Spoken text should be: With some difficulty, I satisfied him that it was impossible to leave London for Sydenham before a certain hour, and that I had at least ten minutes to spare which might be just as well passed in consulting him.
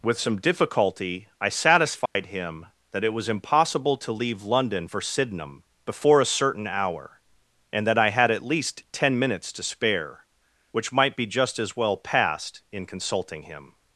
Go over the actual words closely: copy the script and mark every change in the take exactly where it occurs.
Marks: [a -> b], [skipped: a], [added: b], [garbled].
With some difficulty, I satisfied him that it was impossible to leave London for Sydenham before a certain hour, and that I had at least ten minutes to spare which might be just as well passed in consulting him.